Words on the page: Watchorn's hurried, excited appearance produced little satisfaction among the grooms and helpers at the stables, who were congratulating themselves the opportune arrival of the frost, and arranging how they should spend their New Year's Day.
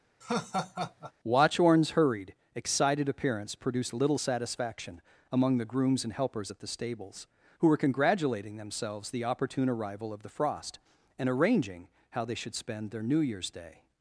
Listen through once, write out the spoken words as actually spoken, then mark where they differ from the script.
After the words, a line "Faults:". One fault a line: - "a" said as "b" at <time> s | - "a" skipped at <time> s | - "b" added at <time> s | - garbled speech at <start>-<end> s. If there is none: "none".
Watchorn's hurried, excited appearance produced little satisfaction among the grooms and helpers at the stables, who were congratulating themselves the opportune arrival of the frost, and arranging how they should spend their New Year's Day.
Faults:
none